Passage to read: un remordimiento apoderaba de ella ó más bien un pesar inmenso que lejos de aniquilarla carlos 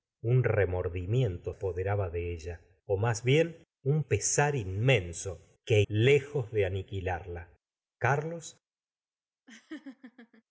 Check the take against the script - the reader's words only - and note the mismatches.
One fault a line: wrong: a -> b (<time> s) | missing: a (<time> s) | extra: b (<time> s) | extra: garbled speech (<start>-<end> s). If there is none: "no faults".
no faults